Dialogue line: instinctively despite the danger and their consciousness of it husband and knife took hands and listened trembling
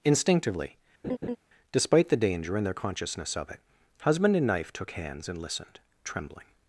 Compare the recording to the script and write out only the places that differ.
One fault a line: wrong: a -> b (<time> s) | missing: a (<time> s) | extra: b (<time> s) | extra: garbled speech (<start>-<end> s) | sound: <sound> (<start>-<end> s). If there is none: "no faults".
sound: laugh (1.0-1.4 s)